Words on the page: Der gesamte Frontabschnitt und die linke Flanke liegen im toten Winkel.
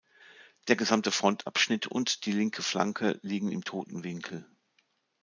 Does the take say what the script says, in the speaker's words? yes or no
yes